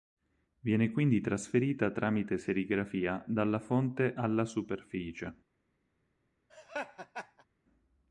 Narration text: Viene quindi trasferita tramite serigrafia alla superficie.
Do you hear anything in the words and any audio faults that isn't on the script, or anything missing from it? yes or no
yes